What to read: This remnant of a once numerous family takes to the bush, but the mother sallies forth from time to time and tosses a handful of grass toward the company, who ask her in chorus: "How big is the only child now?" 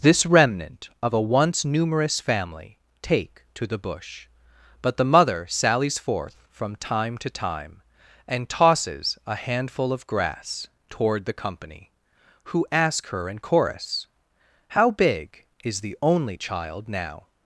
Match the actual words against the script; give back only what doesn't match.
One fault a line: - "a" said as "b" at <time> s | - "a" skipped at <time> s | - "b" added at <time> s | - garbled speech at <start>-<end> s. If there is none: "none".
- "takes" said as "take" at 3.0 s